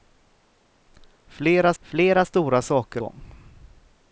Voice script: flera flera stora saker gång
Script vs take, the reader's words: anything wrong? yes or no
no